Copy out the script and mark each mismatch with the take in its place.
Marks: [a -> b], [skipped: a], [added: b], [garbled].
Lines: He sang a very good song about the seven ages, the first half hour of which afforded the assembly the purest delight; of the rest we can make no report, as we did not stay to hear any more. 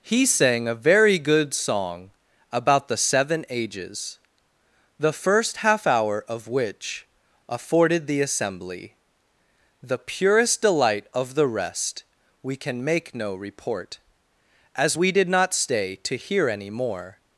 He sang a very good song about the seven ages, the first half hour of which afforded the assembly the purest delight; of the rest we can make no report, as we did not stay to hear any more.